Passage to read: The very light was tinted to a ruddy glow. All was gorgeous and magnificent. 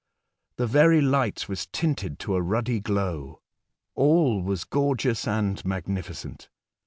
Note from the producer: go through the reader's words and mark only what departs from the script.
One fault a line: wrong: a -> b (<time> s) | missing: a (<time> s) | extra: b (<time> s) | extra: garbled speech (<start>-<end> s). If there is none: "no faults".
no faults